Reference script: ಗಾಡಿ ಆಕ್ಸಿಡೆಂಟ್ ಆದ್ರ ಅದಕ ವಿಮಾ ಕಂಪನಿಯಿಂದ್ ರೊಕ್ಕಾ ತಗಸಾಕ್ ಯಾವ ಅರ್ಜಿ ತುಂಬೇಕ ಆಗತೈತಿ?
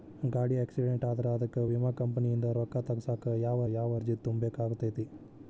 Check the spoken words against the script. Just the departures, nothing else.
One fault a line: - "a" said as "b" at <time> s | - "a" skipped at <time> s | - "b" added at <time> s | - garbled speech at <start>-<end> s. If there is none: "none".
- "ಯಾವ" added at 3.7 s